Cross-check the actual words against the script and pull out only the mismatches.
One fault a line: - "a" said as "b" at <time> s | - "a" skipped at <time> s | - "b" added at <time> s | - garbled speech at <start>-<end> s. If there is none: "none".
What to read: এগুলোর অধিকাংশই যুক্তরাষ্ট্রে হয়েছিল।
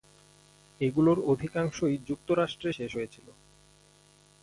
- "শেষ" added at 2.7 s